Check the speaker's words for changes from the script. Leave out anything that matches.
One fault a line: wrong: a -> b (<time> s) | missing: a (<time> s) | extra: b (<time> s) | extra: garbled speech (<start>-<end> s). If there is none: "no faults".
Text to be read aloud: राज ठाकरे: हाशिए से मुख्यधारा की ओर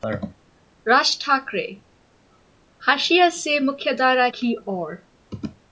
no faults